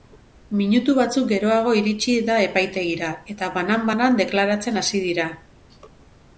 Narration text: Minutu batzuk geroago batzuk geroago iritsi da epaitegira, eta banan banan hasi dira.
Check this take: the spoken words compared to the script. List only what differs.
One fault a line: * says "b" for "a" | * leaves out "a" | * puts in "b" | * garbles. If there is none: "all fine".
* leaves out "batzuk geroago"
* puts in "deklaratzen"